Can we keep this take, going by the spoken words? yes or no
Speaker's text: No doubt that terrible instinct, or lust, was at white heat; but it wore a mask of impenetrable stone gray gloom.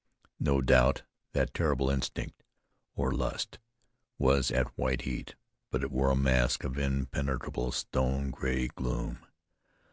yes